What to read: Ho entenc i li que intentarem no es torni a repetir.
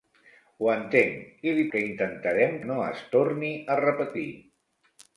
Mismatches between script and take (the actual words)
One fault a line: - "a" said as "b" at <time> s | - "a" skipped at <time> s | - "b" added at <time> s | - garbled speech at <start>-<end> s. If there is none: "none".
none